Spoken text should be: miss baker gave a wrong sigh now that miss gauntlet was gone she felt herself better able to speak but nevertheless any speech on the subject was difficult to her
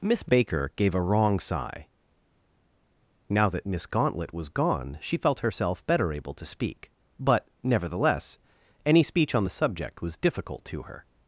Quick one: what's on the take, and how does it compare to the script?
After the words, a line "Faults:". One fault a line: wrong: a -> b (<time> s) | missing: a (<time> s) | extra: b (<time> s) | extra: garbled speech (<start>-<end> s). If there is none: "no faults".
miss baker gave a wrong sigh now that miss gauntlet was gone she felt herself better able to speak but nevertheless any speech on the subject was difficult to her
Faults:
no faults